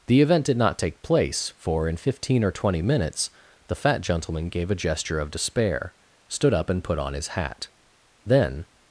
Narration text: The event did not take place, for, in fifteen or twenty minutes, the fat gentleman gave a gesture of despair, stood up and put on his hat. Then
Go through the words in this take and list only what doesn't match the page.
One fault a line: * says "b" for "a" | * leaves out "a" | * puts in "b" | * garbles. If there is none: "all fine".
all fine